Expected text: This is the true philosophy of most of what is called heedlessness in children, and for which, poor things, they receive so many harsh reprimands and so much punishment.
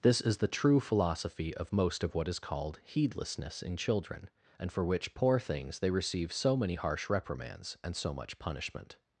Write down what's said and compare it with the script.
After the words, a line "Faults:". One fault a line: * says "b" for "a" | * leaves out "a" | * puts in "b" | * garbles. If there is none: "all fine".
This is the true philosophy of most of what is called heedlessness in children, and for which, poor things, they receive so many harsh reprimands and so much punishment.
Faults:
all fine